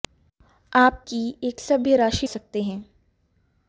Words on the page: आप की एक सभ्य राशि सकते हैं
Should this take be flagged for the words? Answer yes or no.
no